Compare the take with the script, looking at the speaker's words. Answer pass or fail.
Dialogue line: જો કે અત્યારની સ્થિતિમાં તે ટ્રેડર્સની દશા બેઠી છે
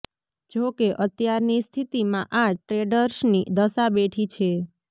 fail